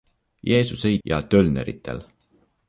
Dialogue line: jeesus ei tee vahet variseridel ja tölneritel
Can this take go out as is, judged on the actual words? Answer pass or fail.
fail